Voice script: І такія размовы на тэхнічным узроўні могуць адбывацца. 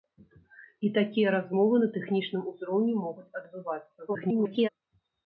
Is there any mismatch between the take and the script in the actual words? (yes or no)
yes